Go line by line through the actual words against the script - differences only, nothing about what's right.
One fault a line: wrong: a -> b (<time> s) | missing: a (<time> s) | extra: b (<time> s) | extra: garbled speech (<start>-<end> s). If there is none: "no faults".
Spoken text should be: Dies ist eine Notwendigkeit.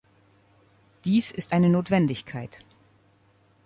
no faults